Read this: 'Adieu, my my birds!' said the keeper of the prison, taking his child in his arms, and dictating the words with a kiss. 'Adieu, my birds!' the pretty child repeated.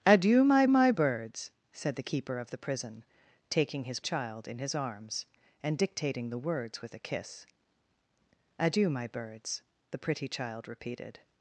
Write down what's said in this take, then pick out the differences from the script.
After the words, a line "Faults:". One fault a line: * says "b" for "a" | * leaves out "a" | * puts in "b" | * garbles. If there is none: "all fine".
'Adieu, my my birds!' said the keeper of the prison, taking his child in his arms, and dictating the words with a kiss. 'Adieu, my birds!' the pretty child repeated.
Faults:
all fine